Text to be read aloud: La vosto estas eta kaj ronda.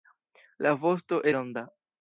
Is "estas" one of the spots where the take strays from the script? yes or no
yes